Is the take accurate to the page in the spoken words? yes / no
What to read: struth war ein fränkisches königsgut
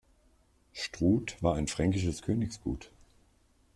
yes